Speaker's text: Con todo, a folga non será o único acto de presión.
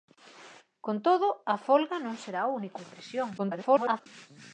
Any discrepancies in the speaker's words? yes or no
yes